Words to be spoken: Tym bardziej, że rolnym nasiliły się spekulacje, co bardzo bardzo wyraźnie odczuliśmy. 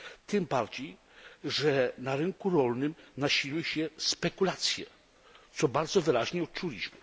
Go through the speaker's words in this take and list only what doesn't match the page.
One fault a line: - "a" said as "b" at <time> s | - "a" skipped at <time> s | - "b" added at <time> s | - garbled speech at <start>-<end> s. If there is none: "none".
- "na rynku" added at 2.0 s
- "bardzo" skipped at 6.0 s